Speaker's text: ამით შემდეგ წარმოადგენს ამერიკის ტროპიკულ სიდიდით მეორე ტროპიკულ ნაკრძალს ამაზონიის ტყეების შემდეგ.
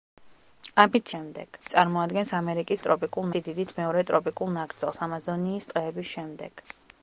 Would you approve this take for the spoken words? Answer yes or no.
yes